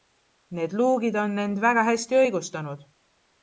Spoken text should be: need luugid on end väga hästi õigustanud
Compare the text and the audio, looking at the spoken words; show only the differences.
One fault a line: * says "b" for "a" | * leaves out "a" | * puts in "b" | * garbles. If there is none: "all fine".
all fine